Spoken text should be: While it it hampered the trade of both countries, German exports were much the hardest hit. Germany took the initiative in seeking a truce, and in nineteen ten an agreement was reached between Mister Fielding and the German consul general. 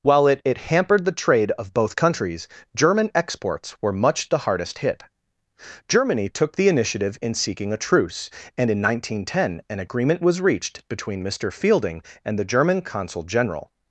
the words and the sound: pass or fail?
pass